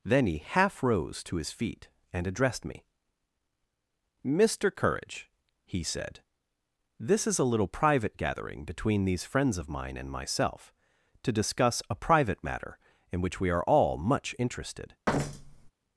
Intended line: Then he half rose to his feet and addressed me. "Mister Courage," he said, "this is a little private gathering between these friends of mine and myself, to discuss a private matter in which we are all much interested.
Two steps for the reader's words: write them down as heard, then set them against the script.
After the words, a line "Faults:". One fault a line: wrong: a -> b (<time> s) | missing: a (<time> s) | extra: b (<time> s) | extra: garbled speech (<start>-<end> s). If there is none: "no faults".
Then he half rose to his feet and addressed me. "Mister Courage," he said, "this is a little private gathering between these friends of mine and myself, to discuss a private matter in which we are all much interested.
Faults:
no faults